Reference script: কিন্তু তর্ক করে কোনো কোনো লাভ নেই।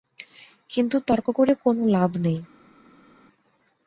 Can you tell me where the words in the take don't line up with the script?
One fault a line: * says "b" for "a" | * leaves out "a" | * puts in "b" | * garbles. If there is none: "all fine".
* leaves out "কোনো"